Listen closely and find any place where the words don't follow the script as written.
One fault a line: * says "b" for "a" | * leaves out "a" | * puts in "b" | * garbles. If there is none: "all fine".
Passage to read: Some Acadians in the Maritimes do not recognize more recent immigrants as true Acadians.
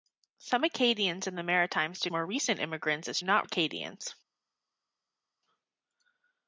* leaves out "not recognize"
* says "not" for "true"